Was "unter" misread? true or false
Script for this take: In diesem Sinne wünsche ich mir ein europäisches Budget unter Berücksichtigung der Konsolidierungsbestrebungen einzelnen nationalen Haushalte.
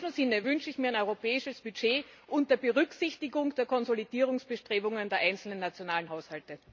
false